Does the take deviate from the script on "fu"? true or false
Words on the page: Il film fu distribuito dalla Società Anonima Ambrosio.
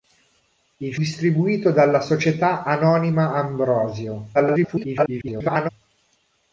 true